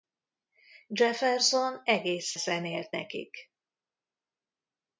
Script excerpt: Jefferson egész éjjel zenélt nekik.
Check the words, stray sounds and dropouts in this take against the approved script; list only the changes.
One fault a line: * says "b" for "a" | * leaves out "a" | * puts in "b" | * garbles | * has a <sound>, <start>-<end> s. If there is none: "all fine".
* leaves out "éjjel"